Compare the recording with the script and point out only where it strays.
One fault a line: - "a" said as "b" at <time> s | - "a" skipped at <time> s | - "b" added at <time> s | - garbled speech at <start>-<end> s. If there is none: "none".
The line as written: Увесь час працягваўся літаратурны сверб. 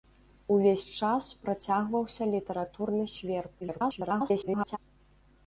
- garbled speech at 3.6-4.8 s